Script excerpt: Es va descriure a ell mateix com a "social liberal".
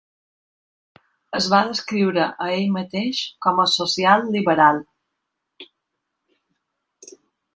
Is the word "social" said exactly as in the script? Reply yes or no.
yes